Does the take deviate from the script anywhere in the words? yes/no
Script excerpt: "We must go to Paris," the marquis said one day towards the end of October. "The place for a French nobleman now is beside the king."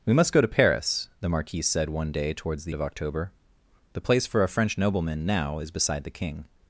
yes